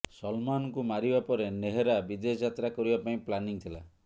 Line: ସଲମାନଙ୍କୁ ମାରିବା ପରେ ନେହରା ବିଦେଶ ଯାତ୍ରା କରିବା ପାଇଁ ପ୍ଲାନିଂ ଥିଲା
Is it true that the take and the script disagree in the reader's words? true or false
false